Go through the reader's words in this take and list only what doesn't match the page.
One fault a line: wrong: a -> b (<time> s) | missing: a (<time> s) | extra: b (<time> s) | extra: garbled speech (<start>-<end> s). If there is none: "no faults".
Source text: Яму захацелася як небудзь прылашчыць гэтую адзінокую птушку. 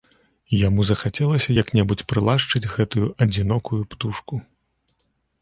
no faults